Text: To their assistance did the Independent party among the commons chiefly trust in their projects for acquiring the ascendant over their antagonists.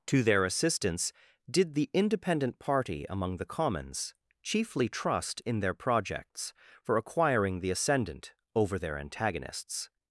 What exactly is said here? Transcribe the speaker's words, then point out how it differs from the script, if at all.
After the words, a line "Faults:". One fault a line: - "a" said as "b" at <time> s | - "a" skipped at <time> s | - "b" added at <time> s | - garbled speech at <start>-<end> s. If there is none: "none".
To their assistance did the Independent party among the commons chiefly trust in their projects for acquiring the ascendant over their antagonists.
Faults:
none